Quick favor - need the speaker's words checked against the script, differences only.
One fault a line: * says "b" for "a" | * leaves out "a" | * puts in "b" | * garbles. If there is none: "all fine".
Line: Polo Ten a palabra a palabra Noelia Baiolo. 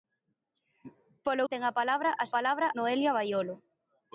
all fine